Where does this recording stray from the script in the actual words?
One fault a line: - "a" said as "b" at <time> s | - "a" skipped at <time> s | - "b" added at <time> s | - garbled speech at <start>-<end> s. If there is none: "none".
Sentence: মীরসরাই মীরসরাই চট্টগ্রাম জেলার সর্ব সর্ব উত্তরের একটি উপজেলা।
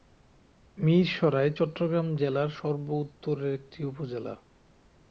- "মীরসরাই" skipped at 1.5 s
- "সর্ব" skipped at 2.9 s